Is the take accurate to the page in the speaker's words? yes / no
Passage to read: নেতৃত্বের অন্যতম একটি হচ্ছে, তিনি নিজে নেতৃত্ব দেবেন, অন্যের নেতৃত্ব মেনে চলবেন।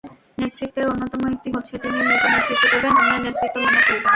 yes